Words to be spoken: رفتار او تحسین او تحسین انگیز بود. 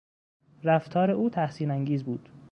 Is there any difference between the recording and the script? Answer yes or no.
yes